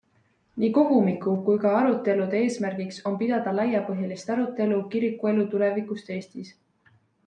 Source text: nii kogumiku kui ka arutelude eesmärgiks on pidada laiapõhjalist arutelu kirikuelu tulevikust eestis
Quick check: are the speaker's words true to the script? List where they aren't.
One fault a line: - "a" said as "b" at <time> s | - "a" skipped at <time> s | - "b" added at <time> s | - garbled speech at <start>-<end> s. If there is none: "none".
none